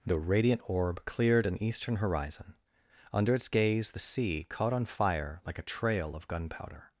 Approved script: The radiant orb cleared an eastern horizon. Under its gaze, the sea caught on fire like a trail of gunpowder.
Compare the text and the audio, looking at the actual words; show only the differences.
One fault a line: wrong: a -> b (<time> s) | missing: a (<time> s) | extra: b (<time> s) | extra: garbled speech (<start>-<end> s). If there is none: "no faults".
no faults